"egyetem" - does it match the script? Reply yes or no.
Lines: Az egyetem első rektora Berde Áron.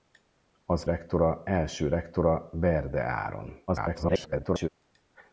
no